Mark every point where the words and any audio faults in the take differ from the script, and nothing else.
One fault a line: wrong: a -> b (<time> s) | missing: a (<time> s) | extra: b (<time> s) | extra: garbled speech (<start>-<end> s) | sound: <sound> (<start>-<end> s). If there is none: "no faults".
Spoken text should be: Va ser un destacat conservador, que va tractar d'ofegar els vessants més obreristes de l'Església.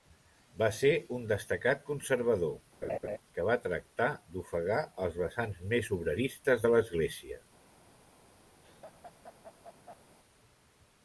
sound: laugh (2.8-3.2 s)
sound: laugh (8.6-10.2 s)